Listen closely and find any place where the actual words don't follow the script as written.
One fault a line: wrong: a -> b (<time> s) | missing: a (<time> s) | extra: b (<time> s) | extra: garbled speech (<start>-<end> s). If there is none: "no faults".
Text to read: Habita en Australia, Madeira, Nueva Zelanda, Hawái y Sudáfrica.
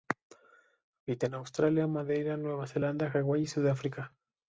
no faults